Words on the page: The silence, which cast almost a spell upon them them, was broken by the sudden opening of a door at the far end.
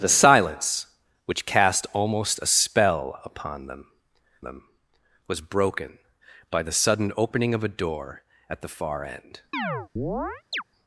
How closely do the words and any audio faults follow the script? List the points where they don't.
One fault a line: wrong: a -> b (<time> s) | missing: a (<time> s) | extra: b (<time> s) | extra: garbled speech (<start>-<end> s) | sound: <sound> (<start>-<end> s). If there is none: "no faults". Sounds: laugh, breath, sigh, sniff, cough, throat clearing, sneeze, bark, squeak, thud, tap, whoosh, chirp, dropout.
sound: chirp (9.5-10.6 s)